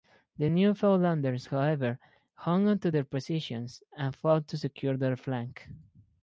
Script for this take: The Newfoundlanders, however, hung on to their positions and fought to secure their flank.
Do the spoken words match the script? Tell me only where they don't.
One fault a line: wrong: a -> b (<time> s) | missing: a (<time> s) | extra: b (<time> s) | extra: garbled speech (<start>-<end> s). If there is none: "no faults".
no faults